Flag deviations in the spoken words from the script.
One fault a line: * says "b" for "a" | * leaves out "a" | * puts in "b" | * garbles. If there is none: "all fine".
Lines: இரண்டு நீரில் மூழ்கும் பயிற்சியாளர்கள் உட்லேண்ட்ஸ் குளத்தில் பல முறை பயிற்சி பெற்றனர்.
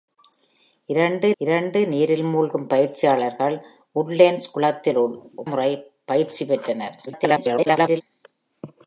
* puts in "இரண்டு"
* leaves out "பல"
* garbles